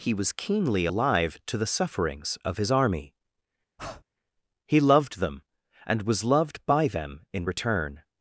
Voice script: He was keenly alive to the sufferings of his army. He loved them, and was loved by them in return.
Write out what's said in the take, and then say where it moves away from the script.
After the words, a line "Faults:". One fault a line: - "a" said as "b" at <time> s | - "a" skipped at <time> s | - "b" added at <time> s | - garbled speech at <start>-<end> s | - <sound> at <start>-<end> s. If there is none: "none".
He was keenly alive to the sufferings of his army. He loved them, and was loved by them in return.
Faults:
- breath at 3.8-4.0 s